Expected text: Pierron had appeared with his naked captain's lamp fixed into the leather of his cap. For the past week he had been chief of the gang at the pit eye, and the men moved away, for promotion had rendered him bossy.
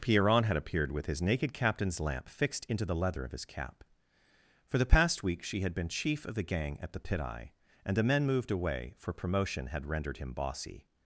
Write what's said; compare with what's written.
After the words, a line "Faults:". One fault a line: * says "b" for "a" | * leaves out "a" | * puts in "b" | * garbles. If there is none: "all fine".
Pierron had appeared with his naked captain's lamp fixed into the leather of his cap. For the past week she had been chief of the gang at the pit eye, and the men moved away, for promotion had rendered him bossy.
Faults:
* says "she" for "he"